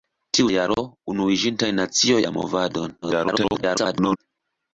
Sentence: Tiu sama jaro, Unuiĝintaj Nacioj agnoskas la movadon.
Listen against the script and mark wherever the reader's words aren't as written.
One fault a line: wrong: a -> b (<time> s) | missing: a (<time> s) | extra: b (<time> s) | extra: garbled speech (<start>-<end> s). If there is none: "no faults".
missing: sama (0.5 s)
missing: agnoskas (2.2 s)
extra: garbled speech (3.0-4.2 s)